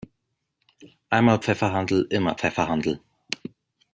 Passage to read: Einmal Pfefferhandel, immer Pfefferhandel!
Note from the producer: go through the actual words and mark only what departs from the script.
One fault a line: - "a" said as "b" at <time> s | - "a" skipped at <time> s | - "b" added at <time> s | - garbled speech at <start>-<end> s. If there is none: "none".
none